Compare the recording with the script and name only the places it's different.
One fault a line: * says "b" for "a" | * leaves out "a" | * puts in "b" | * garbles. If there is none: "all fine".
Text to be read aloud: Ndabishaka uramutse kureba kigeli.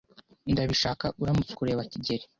all fine